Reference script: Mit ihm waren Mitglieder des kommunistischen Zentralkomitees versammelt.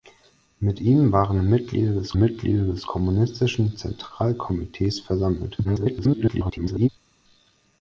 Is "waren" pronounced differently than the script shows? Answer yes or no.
no